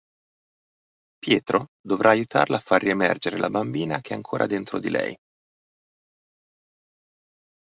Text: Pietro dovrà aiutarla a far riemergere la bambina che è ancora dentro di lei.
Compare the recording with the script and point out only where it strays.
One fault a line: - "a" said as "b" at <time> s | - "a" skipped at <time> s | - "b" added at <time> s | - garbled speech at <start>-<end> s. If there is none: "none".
none